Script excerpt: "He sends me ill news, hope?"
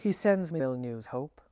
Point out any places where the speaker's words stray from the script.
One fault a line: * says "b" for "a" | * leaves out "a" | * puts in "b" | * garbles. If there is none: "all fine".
all fine